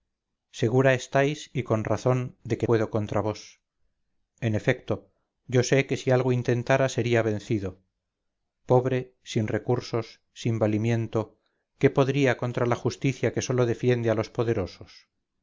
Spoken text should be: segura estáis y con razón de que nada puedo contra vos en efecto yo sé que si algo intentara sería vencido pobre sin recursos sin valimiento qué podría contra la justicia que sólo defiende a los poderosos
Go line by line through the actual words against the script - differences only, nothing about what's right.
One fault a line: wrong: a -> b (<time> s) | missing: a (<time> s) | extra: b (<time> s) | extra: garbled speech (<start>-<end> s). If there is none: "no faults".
missing: nada (2.7 s)